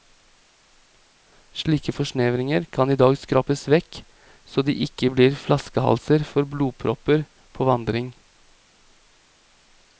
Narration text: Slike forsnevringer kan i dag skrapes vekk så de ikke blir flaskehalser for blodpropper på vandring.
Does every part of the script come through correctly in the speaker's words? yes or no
yes